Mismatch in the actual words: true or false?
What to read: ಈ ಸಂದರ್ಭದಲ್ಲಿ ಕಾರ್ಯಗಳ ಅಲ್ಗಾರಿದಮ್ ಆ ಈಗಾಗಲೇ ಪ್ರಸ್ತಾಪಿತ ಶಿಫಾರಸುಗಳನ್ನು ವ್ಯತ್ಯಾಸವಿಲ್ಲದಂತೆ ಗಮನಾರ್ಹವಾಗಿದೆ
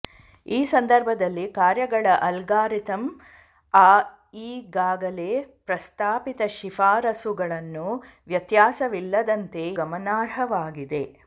false